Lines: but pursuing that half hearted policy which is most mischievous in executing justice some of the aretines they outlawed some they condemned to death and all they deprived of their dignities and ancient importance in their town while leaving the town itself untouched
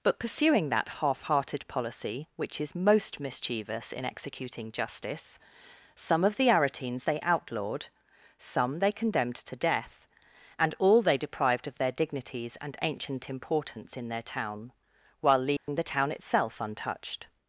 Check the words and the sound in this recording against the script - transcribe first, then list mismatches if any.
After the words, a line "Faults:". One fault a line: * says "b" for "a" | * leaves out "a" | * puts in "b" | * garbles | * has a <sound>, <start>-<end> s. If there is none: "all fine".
but pursuing that half hearted policy which is most mischievous in executing justice some of the aretines they outlawed some they condemned to death and all they deprived of their dignities and ancient importance in their town while leaving the town itself untouched
Faults:
* has a dropout, 15.6-15.7 s